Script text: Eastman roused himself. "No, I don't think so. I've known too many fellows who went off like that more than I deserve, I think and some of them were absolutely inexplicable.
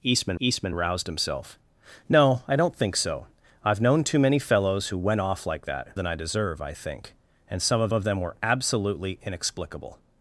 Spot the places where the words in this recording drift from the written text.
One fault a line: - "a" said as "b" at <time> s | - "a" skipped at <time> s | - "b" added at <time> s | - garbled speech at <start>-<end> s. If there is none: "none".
- "eastman" added at 0.4 s
- "more" skipped at 5.9 s
- "of" added at 7.9 s